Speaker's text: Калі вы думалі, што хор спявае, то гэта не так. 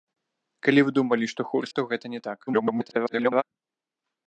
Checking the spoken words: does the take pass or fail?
fail